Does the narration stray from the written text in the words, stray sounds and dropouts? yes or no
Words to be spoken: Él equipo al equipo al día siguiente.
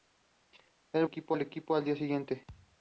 yes